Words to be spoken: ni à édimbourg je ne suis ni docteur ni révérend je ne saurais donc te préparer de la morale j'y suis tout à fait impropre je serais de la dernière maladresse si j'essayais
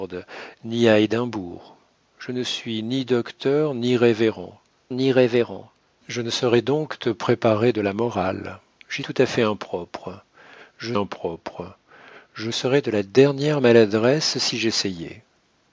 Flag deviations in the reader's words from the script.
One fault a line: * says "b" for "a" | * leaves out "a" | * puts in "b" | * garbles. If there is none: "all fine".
* puts in "ni révérend"
* leaves out "suis"
* puts in "impropre je"